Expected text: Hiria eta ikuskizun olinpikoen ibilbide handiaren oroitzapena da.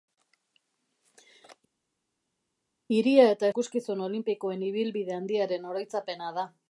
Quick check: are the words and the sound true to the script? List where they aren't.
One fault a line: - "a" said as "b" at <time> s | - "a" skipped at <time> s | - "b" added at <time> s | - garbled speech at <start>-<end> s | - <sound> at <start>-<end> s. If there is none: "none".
none